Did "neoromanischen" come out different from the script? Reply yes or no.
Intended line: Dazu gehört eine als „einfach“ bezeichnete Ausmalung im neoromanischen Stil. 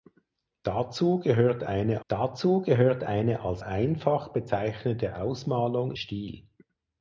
yes